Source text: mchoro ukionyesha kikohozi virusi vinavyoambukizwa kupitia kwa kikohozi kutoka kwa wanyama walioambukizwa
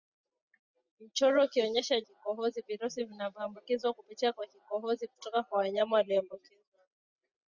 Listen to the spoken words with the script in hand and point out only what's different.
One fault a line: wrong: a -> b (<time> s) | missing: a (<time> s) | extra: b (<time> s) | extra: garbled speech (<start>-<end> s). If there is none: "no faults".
no faults